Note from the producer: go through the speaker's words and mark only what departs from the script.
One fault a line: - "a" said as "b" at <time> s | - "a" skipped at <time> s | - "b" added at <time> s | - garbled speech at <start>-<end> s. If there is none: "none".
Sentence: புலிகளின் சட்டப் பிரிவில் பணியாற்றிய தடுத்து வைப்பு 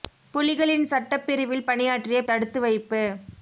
none